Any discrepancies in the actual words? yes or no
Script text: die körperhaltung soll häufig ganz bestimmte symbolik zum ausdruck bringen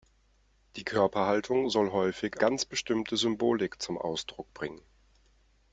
no